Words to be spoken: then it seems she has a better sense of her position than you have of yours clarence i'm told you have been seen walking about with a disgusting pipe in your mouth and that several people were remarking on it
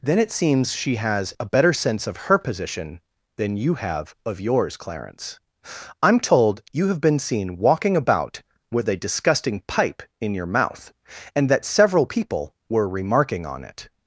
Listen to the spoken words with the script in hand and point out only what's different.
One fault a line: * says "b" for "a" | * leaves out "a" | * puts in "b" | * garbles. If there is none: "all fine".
all fine